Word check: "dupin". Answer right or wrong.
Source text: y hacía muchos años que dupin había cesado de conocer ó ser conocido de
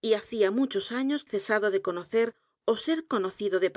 wrong